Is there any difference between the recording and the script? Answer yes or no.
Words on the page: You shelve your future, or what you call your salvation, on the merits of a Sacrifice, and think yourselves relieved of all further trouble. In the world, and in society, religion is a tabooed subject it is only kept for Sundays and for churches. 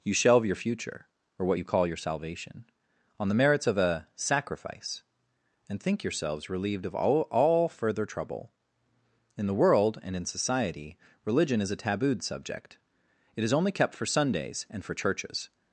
yes